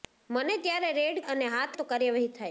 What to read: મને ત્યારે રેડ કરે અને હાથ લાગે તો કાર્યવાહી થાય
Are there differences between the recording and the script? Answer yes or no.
yes